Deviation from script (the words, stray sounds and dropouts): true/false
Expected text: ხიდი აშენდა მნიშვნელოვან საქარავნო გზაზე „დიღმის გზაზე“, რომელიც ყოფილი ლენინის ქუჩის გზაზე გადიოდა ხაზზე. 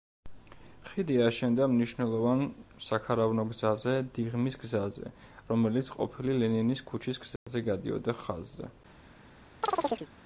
true